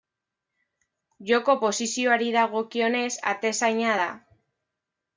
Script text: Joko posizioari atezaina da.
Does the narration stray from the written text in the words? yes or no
yes